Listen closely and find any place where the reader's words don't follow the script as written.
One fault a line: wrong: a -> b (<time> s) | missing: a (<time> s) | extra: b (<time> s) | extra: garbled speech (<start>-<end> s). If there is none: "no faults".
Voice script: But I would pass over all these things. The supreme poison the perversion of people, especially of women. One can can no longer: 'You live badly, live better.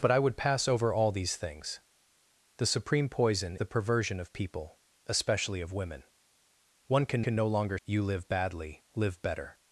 no faults